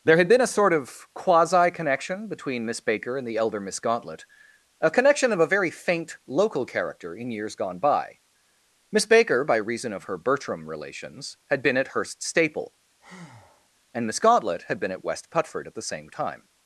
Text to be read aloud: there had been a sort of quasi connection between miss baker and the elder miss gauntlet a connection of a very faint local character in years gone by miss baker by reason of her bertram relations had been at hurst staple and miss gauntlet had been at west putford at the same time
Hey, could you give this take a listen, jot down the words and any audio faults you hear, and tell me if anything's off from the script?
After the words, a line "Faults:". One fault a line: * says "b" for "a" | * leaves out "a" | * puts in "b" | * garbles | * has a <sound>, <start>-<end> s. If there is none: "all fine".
there had been a sort of quasi connection between miss baker and the elder miss gauntlet a connection of a very faint local character in years gone by miss baker by reason of her bertram relations had been at hurst staple and miss gauntlet had been at west putford at the same time
Faults:
* has a breath, 13.0-13.7 s